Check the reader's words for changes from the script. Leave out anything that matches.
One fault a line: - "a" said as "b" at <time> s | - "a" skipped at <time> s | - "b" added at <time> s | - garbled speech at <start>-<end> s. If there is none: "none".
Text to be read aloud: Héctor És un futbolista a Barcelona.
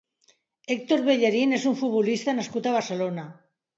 - "Bellerín" added at 1.1 s
- "nascut" added at 2.4 s